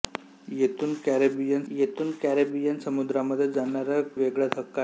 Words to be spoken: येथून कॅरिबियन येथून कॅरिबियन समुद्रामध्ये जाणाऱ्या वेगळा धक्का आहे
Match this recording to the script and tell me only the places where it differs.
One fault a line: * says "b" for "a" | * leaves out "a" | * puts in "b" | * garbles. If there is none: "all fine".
all fine